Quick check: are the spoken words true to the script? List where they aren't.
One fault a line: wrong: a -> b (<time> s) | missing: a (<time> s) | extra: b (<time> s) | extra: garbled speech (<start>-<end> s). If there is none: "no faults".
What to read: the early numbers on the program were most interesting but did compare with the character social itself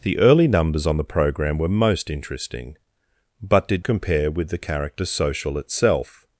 no faults